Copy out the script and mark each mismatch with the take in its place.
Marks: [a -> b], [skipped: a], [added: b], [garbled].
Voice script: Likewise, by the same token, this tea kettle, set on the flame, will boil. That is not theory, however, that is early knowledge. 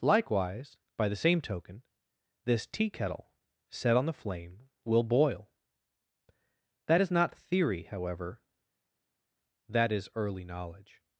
Likewise, by the same token, this tea kettle, set on the flame, will boil. That is not theory, however, that is early knowledge.